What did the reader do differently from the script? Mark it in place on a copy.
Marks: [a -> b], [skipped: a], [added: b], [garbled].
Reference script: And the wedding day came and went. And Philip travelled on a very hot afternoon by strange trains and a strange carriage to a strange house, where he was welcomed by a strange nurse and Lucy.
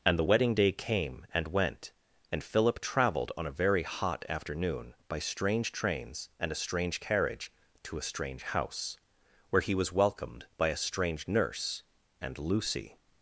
And the wedding day came and went. And Philip travelled on a very hot afternoon by strange trains and a strange carriage to a strange house, where he was welcomed by a strange nurse and Lucy.